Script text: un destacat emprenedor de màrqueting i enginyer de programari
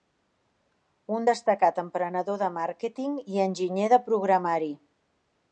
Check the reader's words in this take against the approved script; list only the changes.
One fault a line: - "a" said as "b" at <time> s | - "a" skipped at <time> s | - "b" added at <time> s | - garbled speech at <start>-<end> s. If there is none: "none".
none